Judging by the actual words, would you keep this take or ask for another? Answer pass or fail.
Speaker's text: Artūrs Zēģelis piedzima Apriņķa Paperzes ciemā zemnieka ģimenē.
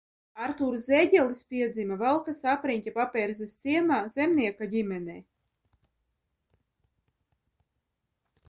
fail